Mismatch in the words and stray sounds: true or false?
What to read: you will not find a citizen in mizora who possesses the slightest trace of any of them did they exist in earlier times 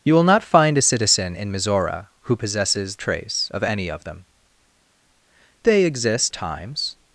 true